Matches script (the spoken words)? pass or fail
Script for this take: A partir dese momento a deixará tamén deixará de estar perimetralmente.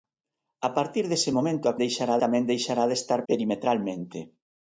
pass